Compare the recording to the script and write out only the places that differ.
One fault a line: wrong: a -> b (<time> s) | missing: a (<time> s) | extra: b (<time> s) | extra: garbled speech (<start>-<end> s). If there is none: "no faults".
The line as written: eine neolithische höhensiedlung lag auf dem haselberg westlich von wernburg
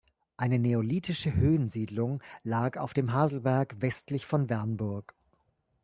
no faults